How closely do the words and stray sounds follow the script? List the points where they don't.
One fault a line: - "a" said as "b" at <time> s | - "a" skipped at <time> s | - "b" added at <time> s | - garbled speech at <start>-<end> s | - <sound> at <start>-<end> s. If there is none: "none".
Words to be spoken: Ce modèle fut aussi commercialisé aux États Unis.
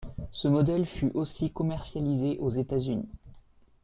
none